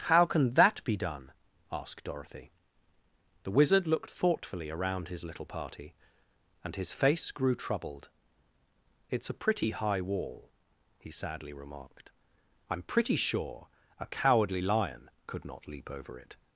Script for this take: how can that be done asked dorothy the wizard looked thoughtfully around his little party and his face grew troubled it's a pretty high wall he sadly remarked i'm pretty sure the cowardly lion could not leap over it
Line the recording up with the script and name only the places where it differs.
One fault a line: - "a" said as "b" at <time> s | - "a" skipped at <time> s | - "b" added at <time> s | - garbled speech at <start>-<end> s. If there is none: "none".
- "the" said as "a" at 14.0 s